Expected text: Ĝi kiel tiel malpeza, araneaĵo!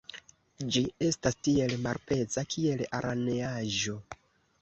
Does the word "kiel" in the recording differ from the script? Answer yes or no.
yes